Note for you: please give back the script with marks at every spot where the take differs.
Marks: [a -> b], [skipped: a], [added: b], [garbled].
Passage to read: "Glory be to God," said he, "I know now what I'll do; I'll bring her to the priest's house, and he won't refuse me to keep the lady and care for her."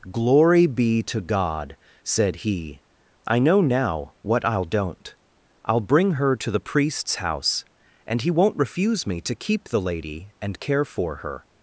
"Glory be to God," said he, "I know now what I'll [do; -> don't] I'll bring her to the priest's house, and he won't refuse me to keep the lady and care for her."